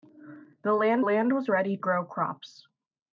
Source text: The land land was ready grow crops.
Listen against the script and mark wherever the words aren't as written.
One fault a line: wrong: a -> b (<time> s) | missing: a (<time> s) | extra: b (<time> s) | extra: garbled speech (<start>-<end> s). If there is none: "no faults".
no faults